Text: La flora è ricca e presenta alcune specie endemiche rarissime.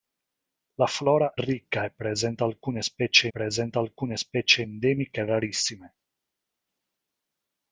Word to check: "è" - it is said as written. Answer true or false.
false